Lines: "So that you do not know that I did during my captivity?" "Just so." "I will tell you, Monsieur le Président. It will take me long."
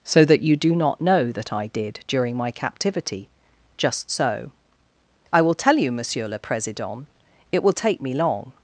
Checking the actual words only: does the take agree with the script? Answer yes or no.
yes